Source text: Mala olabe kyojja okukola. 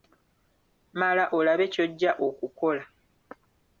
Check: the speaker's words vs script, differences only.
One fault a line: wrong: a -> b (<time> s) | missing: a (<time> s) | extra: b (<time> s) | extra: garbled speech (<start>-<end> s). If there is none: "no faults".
no faults